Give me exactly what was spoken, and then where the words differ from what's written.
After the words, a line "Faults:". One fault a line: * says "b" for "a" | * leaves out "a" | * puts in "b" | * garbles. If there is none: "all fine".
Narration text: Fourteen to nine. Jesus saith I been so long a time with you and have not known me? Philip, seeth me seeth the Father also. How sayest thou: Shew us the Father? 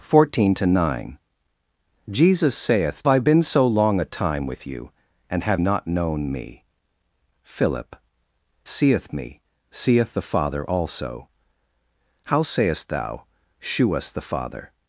Fourteen to nine. Jesus saith I been so long a time with you and have not known me? Philip, seeth me seeth the Father also. How sayest thou: Shew us the Father?
Faults:
all fine